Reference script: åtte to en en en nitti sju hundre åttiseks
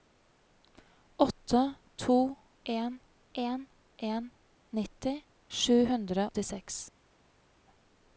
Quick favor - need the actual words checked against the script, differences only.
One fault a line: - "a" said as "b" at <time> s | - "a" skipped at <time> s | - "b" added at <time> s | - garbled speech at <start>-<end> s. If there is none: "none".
none